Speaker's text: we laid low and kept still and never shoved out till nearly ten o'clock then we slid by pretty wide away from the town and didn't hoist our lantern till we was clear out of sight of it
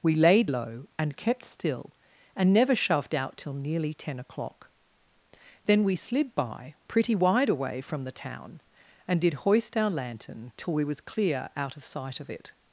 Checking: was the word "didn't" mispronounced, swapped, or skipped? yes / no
yes